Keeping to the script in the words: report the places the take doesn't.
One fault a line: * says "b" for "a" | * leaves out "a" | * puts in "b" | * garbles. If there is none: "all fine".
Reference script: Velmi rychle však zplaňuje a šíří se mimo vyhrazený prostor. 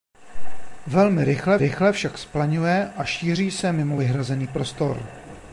* puts in "rychle"